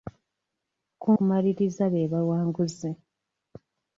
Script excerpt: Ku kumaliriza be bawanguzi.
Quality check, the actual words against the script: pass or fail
pass